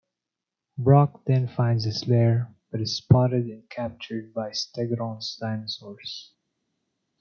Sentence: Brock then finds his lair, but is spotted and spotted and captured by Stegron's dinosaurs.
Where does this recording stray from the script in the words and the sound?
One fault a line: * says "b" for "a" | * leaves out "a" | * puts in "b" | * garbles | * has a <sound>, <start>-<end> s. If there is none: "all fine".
* leaves out "spotted and"